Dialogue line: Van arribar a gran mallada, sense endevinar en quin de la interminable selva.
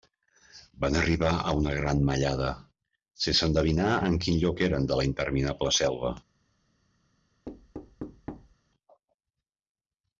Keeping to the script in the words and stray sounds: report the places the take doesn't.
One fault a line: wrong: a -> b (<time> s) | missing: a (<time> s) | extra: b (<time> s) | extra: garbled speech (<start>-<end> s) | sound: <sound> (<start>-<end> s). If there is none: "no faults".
extra: una (1.6 s)
extra: lloc eren (4.5 s)
sound: thud (7.5-8.6 s)